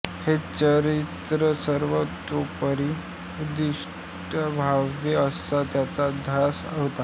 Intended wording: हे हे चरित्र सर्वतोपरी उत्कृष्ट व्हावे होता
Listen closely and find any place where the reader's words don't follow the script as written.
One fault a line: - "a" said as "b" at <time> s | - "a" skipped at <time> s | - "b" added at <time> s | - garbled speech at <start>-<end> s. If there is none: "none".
- "हे" skipped at 0.3 s
- "असा त्यांचा ध्यास" added at 5.2 s